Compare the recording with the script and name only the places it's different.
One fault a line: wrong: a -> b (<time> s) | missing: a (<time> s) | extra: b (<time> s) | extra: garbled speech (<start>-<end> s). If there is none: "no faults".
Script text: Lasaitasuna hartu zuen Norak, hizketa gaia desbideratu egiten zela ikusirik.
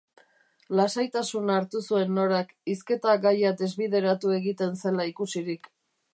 no faults